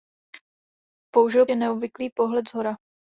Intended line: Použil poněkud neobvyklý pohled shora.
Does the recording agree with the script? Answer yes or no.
no